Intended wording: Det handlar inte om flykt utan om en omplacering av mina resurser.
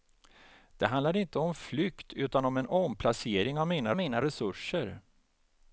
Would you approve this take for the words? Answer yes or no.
no